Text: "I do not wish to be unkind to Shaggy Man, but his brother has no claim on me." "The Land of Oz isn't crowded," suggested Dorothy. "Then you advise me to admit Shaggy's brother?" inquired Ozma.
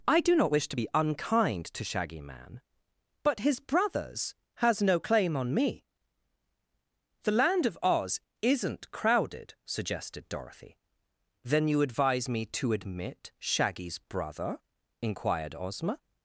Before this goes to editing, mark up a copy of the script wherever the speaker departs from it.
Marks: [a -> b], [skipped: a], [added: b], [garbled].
"I do not wish to be unkind to Shaggy Man, but his [brother -> brothers] has no claim on me." "The Land of Oz isn't crowded," suggested Dorothy. "Then you advise me to admit Shaggy's brother?" inquired Ozma.